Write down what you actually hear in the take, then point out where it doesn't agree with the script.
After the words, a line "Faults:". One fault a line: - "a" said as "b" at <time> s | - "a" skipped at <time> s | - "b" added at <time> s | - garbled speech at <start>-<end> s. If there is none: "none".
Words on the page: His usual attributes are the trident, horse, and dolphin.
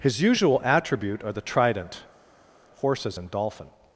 His usual attribute are the trident, horses, and dolphin.
Faults:
- "attributes" said as "attribute" at 0.6 s
- "horse" said as "horses" at 2.8 s